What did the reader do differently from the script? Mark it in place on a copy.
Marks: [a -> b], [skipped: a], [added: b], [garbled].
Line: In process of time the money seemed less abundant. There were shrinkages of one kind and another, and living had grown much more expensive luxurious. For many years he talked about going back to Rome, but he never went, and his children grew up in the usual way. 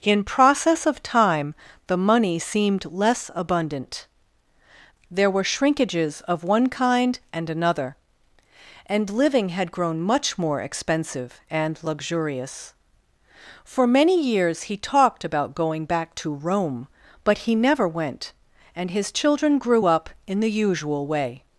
In process of time the money seemed less abundant. There were shrinkages of one kind and another, and living had grown much more expensive [added: and] luxurious. For many years he talked about going back to Rome, but he never went, and his children grew up in the usual way.